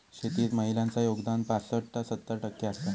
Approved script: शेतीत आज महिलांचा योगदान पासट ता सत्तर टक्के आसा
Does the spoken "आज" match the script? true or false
false